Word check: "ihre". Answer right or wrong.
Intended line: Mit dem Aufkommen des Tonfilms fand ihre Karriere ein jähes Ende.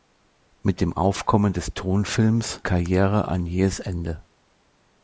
wrong